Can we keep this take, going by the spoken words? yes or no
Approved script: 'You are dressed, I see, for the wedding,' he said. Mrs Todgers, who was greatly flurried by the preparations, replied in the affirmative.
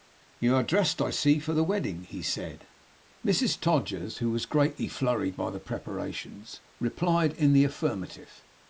yes